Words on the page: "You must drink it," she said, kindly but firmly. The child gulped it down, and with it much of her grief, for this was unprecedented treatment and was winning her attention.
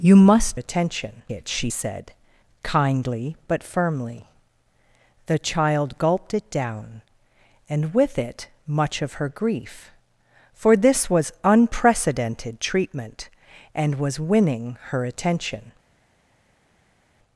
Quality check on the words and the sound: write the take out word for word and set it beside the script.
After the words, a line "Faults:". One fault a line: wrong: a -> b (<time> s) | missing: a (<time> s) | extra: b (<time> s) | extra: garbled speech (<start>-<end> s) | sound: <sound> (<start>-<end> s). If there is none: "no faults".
"You must attention it," she said, kindly but firmly. The child gulped it down, and with it much of her grief, for this was unprecedented treatment and was winning her attention.
Faults:
wrong: drink -> attention (0.6 s)